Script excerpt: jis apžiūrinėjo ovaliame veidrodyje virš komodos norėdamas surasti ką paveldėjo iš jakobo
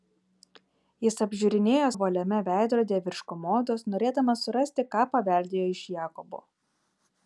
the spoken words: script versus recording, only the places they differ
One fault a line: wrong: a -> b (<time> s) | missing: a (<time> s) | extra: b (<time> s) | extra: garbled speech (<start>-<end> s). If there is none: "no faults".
no faults